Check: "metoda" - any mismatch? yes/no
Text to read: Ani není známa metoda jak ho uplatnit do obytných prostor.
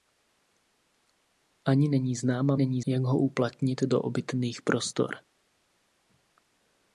yes